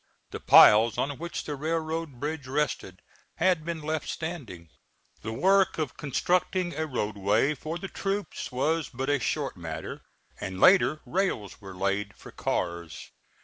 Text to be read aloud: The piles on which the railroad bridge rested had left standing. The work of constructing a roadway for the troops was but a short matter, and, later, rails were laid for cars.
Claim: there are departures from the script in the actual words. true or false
true